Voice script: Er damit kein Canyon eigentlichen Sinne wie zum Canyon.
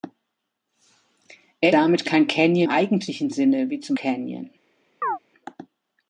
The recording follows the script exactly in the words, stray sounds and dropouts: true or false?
false